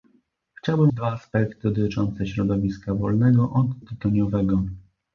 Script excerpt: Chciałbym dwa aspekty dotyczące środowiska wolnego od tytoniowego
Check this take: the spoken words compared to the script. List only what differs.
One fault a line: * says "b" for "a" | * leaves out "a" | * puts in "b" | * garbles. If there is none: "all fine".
all fine